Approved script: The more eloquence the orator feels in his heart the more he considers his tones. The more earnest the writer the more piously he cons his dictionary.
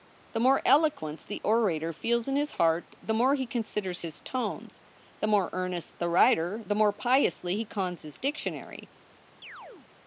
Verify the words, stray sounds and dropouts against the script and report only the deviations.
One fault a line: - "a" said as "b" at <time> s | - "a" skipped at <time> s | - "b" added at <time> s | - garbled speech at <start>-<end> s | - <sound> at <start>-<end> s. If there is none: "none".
- chirp at 9.4-9.9 s